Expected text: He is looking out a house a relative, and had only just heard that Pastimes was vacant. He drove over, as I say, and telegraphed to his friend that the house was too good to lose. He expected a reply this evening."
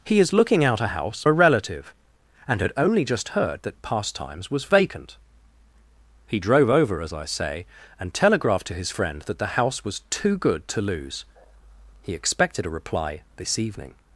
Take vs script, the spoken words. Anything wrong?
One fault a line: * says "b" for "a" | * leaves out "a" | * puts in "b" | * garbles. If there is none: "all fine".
all fine